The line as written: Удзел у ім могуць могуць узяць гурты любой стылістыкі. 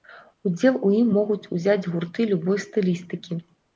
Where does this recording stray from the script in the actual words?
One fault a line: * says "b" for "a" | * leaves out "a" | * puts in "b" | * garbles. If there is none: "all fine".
* leaves out "могуць"